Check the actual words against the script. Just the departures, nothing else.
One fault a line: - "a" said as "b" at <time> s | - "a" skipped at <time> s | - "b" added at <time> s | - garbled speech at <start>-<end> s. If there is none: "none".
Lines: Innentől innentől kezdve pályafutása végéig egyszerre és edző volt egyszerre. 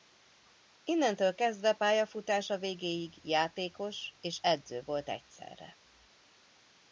- "innentől" skipped at 1.4 s
- "egyszerre" said as "játékos" at 3.2 s